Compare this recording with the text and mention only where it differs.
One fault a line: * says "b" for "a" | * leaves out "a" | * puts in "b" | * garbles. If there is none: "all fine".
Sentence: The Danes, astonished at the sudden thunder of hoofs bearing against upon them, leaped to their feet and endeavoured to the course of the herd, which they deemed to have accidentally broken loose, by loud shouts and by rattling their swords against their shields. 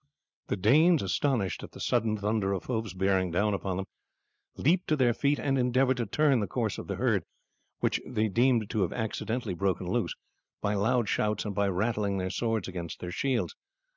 * says "down" for "against"
* puts in "turn"